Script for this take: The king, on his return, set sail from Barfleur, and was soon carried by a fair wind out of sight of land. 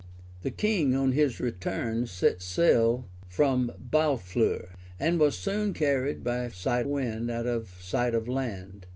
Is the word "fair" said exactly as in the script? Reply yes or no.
no